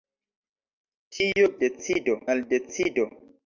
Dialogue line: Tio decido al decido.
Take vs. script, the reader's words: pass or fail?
pass